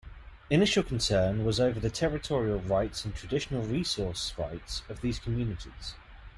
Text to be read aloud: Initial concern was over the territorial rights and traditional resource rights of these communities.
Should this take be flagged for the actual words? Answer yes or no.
no